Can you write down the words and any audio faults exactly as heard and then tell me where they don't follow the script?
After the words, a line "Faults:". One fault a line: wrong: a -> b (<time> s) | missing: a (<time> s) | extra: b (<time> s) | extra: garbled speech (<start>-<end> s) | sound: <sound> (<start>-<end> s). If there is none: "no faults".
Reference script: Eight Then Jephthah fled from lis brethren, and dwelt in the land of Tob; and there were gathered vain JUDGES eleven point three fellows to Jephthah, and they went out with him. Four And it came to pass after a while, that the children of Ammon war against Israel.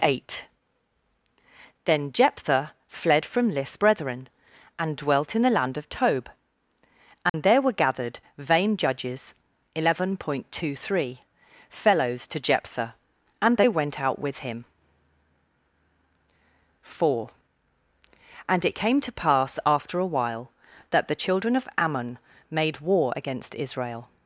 Eight Then Jephthah fled from lis brethren, and dwelt in the land of Tob; and there were gathered vain JUDGES eleven point two three fellows to Jephthah, and they went out with him. Four And it came to pass after a while, that the children of Ammon made war against Israel.
Faults:
sound: dropout (7.3-7.3 s)
extra: two (10.5 s)
extra: made (22.5 s)